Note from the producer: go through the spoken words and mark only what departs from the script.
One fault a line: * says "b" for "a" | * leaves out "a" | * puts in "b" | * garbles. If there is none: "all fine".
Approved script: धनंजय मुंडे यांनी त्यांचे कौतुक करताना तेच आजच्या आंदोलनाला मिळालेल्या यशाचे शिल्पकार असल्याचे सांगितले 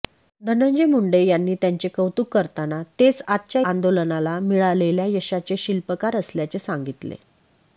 all fine